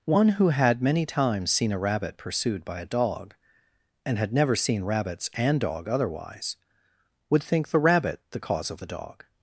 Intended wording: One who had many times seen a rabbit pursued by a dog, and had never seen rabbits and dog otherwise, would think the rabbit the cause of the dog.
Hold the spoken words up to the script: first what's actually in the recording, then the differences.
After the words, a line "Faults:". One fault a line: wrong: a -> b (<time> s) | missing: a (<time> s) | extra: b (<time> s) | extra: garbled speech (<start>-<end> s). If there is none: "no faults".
One who had many times seen a rabbit pursued by a dog, and had never seen rabbits and dog otherwise, would think the rabbit the cause of the dog.
Faults:
no faults